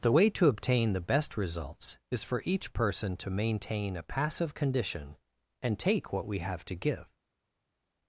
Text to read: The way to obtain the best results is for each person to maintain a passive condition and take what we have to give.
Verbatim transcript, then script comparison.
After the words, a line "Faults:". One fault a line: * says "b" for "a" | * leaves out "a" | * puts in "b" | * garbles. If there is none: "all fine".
The way to obtain the best results is for each person to maintain a passive condition and take what we have to give.
Faults:
all fine